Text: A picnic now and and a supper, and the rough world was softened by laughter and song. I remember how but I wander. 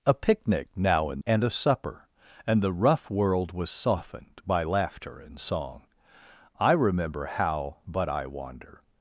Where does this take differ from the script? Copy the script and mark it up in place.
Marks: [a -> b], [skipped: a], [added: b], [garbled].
A picnic now and and a supper, and the rough world was softened by laughter and song. I remember how but I wander.